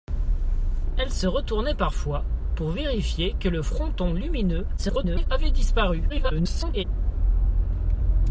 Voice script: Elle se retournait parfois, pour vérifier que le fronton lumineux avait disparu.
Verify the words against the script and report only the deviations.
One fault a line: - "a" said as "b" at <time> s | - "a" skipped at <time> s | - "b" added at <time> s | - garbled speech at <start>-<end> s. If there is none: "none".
- garbled speech at 4.8-5.3 s
- garbled speech at 6.1-6.8 s